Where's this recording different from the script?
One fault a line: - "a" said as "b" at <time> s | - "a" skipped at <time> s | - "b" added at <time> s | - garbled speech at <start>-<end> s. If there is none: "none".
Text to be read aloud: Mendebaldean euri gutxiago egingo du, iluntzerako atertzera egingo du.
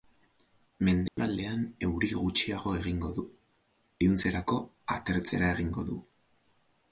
none